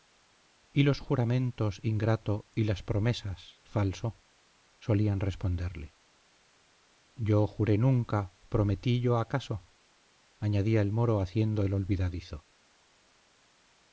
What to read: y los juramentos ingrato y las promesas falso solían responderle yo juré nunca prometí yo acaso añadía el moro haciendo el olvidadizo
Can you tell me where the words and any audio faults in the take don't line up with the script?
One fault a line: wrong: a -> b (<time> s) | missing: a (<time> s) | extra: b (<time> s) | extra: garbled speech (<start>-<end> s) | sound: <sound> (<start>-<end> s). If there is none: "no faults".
no faults